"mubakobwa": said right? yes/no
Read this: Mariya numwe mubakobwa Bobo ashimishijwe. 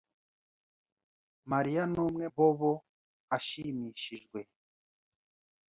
no